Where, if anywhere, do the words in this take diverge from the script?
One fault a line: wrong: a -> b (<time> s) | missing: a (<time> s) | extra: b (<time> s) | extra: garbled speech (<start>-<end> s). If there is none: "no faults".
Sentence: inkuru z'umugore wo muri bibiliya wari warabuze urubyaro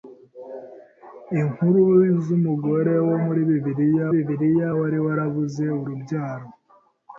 extra: bibiliya (4.1 s)